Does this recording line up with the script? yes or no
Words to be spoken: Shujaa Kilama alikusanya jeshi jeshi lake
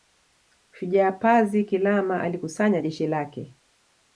no